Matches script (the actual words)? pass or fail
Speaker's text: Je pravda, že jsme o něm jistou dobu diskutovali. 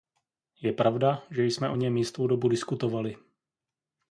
pass